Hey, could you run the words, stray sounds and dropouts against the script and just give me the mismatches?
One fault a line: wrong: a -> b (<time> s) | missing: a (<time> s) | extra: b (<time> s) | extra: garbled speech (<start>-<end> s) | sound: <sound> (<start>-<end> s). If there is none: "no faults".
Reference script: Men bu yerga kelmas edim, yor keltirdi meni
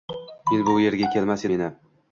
missing: edim yor keltirdi (1.4 s)